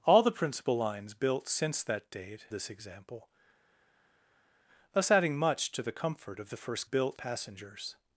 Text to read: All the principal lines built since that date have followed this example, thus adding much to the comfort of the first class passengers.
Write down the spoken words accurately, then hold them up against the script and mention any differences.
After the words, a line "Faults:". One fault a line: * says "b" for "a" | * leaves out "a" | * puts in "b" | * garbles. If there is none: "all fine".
All the principal lines built since that date this example, thus adding much to the comfort of the first built passengers.
Faults:
* leaves out "have followed"
* says "built" for "class"